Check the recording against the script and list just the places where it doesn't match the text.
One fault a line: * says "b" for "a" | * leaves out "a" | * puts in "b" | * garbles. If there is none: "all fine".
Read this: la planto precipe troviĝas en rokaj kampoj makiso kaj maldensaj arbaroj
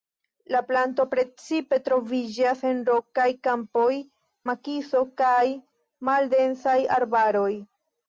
all fine